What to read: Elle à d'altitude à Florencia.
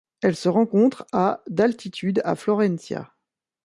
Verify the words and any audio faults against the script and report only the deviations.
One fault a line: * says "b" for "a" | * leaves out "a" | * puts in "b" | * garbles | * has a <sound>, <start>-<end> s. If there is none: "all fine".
* puts in "se rencontre"